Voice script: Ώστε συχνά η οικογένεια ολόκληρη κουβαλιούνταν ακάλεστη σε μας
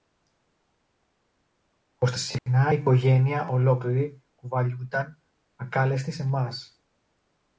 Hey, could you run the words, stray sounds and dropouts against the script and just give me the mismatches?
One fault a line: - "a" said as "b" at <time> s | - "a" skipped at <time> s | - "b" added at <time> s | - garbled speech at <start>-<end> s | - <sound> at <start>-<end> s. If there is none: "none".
- dropout at 2.4-2.5 s